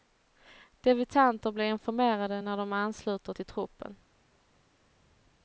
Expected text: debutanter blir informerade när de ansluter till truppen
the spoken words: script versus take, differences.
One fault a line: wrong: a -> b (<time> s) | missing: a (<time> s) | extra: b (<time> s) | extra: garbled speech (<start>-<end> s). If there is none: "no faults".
no faults